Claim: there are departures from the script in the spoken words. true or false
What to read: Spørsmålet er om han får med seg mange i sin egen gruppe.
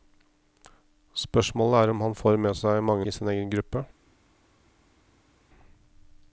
false